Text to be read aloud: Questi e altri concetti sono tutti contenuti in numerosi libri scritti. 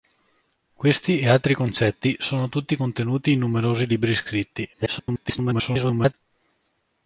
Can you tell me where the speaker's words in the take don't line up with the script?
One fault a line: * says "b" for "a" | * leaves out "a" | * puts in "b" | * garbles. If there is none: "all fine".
* garbles